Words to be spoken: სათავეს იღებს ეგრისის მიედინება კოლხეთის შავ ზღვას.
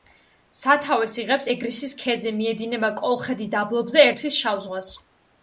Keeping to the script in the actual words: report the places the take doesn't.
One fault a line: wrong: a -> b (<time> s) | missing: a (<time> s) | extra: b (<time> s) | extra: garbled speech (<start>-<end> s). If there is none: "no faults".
extra: ქედზე (2.0 s)
extra: დაბლობზე ერთვის (3.6 s)